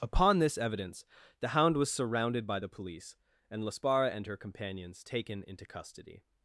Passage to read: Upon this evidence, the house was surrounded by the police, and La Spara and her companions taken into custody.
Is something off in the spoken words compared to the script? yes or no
yes